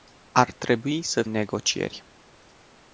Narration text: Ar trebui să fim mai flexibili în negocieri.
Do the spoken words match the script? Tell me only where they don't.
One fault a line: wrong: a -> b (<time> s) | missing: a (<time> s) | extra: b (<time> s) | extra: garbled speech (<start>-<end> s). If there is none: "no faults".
missing: fim mai flexibili (1.2 s)